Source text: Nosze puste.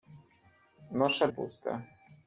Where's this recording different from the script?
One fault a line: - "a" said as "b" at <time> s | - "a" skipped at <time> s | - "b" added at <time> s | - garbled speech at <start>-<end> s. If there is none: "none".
none